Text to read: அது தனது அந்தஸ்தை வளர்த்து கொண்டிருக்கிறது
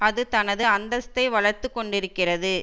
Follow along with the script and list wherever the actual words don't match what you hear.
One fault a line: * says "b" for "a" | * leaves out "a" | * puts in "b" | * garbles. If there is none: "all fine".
all fine